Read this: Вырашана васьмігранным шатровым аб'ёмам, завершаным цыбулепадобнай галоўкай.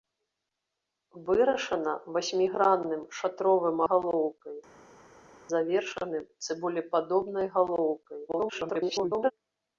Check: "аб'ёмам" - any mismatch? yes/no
yes